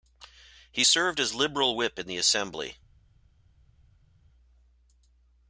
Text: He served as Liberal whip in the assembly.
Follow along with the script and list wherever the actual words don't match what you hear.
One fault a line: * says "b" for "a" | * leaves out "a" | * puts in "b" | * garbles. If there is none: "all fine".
all fine